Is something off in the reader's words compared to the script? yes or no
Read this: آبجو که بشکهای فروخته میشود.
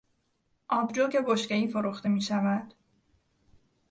no